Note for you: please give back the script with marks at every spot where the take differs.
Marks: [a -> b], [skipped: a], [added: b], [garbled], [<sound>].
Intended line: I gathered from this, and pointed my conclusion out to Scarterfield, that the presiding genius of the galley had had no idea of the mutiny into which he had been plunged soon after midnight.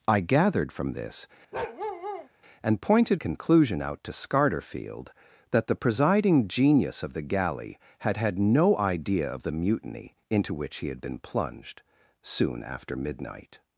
I gathered from this, [bark] and pointed [skipped: my] conclusion out to Scarterfield, that the presiding genius of the galley had had no idea of the mutiny into which he had been plunged soon after midnight.